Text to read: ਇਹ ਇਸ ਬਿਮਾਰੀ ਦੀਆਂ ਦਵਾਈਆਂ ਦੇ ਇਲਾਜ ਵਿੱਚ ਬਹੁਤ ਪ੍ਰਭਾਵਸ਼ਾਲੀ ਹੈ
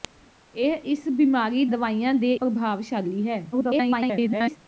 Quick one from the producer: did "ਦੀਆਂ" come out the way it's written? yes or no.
no